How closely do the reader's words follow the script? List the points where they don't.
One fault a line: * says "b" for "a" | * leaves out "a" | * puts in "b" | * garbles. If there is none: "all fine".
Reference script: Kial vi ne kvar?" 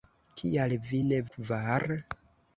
all fine